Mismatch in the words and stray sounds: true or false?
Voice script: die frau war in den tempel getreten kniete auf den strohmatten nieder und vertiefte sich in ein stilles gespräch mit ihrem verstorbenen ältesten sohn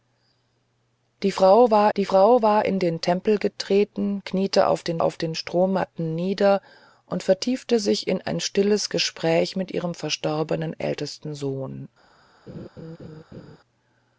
true